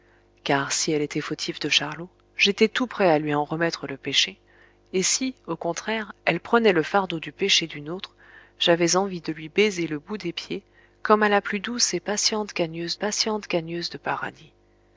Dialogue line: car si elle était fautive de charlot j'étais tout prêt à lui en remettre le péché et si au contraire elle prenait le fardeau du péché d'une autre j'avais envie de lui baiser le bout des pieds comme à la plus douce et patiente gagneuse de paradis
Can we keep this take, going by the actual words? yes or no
no